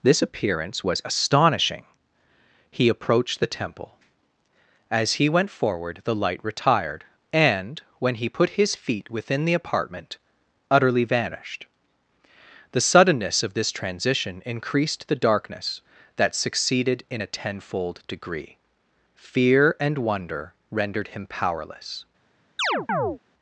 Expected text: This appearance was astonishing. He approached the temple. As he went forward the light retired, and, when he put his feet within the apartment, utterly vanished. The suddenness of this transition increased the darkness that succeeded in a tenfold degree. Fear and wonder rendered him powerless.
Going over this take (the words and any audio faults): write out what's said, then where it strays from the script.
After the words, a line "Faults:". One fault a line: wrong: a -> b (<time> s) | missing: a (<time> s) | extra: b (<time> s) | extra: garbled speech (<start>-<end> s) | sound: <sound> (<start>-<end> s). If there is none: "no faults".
This appearance was astonishing. He approached the temple. As he went forward the light retired, and, when he put his feet within the apartment, utterly vanished. The suddenness of this transition increased the darkness that succeeded in a tenfold degree. Fear and wonder rendered him powerless.
Faults:
sound: chirp (22.6-23.2 s)